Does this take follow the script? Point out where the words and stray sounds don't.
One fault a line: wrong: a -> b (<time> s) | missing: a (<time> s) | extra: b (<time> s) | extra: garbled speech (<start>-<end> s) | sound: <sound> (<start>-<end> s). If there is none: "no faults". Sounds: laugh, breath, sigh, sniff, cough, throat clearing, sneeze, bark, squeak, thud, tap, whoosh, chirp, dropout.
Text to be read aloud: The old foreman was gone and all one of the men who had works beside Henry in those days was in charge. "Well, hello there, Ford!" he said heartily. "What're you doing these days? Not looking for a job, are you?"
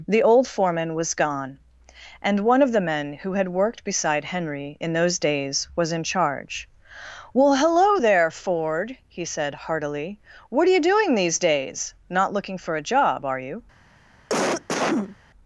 missing: all (2.4 s)
wrong: works -> worked (3.5 s)
sound: cough (14.3-15.2 s)